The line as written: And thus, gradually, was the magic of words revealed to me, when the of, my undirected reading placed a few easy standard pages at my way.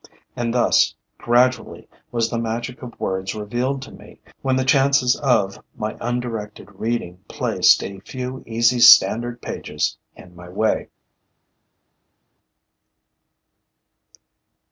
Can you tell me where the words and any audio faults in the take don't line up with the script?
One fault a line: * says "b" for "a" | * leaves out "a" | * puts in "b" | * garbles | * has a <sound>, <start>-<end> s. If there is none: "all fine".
* puts in "chances"
* says "in" for "at"